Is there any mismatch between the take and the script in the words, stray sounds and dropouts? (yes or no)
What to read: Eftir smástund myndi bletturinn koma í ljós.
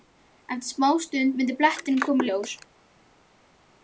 no